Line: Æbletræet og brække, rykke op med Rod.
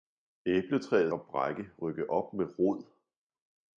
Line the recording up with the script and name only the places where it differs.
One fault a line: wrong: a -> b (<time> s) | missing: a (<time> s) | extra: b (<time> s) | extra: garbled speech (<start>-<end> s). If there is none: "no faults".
no faults